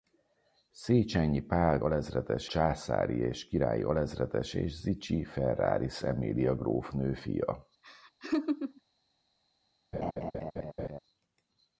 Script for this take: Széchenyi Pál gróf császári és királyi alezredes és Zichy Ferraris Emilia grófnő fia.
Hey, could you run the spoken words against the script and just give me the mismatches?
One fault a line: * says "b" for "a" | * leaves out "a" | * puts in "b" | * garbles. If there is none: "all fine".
* says "alezredes" for "gróf"